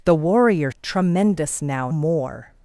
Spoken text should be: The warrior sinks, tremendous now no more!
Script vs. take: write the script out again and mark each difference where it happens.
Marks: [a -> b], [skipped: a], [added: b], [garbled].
The warrior [skipped: sinks,] tremendous now [skipped: no] more!